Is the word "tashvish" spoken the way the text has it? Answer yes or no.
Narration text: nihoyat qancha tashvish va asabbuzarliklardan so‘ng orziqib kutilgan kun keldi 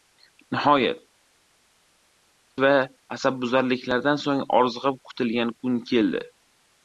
no